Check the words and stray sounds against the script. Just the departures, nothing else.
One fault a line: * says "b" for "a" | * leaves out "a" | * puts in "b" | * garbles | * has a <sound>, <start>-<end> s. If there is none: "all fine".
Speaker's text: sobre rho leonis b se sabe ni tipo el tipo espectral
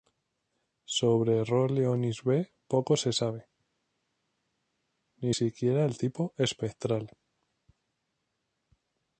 * puts in "poco"
* says "siquiera" for "tipo"